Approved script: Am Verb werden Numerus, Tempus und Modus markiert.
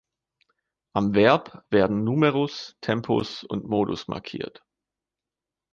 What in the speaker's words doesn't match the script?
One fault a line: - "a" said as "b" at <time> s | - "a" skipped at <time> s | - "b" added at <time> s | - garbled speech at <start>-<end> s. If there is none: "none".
none